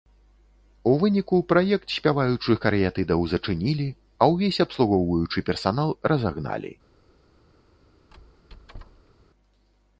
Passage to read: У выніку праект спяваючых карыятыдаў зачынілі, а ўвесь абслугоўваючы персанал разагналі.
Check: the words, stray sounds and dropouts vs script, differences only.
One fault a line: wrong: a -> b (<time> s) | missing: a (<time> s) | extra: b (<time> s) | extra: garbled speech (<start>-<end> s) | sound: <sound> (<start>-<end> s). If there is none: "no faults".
sound: squeak (8.1-9.1 s)